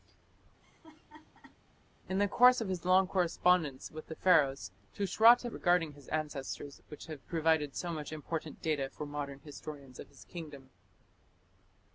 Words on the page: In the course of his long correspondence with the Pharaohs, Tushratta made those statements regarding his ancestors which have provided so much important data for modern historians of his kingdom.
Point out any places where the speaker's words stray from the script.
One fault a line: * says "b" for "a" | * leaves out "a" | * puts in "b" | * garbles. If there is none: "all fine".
* leaves out "made those statements"